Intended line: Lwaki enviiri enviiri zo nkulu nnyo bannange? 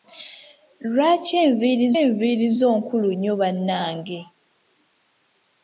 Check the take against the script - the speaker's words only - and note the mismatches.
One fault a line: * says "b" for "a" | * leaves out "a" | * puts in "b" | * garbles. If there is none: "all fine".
all fine